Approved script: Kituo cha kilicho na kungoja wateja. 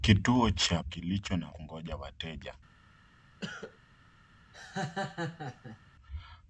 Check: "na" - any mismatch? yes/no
no